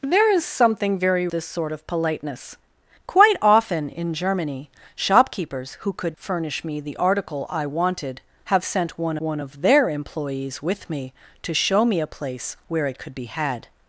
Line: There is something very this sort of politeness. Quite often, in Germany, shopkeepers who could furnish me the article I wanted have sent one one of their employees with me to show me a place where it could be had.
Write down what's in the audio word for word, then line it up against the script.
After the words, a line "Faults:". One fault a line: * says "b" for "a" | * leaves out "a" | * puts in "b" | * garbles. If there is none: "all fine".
There is something very this sort of politeness. Quite often, in Germany, shopkeepers who could furnish me the article I wanted have sent one one of their employees with me to show me a place where it could be had.
Faults:
all fine